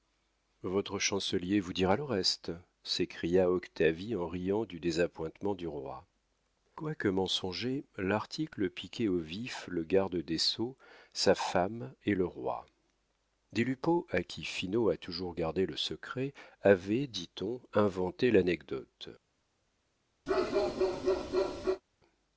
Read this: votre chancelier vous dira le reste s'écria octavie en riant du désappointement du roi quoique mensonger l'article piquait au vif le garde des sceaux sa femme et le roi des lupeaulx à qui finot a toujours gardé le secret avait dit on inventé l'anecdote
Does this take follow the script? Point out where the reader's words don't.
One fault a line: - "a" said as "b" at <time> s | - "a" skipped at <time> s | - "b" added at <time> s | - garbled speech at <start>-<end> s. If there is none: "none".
none